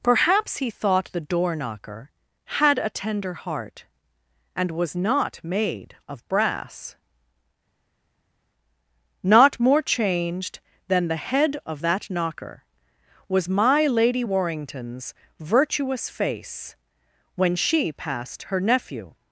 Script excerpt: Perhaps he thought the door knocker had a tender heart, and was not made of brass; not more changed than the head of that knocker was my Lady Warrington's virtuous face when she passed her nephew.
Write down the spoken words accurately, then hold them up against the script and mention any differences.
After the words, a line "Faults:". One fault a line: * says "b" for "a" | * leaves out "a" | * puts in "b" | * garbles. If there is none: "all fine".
Perhaps he thought the door knocker had a tender heart, and was not made of brass; not more changed than the head of that knocker was my Lady Warrington's virtuous face when she passed her nephew.
Faults:
all fine